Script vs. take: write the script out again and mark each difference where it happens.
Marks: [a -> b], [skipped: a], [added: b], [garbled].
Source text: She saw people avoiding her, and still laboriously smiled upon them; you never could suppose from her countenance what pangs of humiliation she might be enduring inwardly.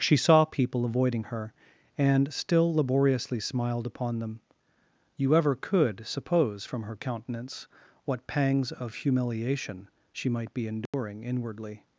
She saw people avoiding her, and still laboriously smiled upon them; you [never -> ever] could suppose from her countenance what pangs of humiliation she might be enduring inwardly.